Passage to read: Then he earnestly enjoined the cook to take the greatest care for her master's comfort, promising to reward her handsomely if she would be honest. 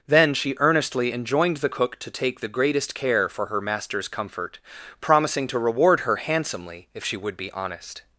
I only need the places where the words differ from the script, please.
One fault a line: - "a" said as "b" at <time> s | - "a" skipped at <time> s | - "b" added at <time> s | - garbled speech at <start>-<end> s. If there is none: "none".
- "he" said as "she" at 0.3 s